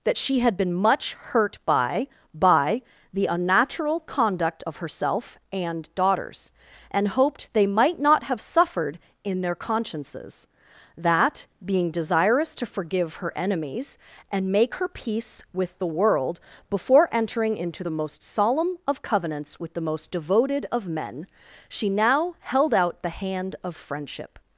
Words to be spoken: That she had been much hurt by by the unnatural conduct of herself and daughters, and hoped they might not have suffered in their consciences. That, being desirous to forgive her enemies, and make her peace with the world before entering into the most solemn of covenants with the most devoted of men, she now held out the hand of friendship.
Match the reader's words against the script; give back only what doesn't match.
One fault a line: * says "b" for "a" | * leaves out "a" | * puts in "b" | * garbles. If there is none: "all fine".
all fine